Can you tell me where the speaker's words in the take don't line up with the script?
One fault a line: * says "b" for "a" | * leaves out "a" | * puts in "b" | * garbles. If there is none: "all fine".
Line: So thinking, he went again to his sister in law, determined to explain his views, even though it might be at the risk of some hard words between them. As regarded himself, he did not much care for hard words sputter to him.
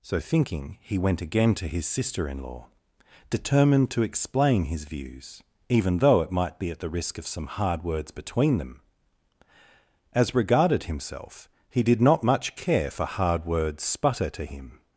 all fine